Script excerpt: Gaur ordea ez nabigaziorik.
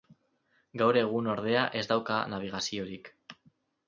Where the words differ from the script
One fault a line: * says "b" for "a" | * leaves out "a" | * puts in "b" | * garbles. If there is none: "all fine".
* puts in "egun"
* puts in "dauka"